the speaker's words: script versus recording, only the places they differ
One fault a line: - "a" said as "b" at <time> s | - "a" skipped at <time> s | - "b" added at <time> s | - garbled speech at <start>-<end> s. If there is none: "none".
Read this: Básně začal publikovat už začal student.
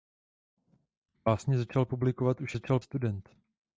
none